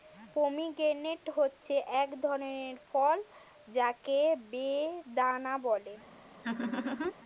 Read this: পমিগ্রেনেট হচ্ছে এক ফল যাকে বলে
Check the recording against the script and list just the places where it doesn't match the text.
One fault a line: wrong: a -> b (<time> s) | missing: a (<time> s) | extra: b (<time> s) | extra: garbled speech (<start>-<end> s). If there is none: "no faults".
extra: ধরনের (2.2 s)
extra: বেদানা (4.5 s)